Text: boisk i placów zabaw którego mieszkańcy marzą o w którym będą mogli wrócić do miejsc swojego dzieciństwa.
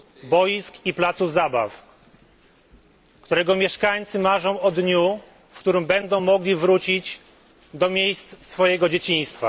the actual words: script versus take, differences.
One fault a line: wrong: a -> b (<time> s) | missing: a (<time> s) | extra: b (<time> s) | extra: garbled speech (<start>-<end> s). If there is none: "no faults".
extra: dniu (4.7 s)